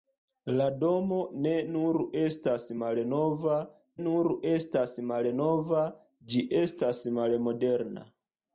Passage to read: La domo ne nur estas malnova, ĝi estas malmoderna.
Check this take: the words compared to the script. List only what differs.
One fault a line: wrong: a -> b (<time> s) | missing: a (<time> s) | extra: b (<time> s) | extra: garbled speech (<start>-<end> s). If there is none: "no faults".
extra: nur estas malnova (4.1 s)